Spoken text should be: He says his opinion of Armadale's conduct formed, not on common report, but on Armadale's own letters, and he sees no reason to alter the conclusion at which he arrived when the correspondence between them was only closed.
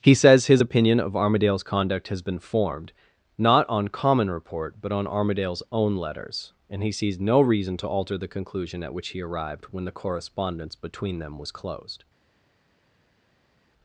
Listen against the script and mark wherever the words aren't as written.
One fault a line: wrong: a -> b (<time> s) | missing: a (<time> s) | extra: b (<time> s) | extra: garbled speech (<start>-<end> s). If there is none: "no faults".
extra: has been (2.1 s)
missing: only (11.5 s)